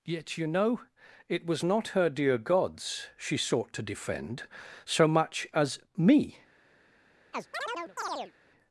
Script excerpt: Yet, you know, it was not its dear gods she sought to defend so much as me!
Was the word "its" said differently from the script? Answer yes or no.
yes